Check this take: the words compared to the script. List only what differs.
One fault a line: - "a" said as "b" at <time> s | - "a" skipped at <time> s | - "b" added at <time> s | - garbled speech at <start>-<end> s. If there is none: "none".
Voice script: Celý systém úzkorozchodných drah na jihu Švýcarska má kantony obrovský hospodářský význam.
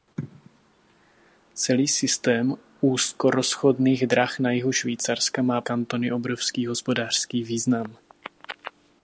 none